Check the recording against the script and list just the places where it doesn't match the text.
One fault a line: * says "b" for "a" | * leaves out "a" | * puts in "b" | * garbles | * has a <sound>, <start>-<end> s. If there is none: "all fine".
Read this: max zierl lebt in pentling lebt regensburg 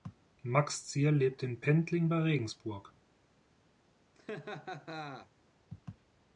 * says "bei" for "lebt"
* has a laugh, 4.1-5.3 s